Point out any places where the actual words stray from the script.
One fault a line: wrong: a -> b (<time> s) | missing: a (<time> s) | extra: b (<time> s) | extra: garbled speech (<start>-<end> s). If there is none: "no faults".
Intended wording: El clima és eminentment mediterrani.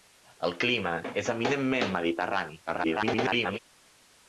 extra: garbled speech (2.7-3.6 s)